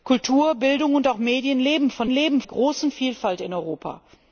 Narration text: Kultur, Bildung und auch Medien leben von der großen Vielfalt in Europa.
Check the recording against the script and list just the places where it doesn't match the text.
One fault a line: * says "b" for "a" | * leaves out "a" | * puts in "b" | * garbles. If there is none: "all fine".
* says "leben" for "der"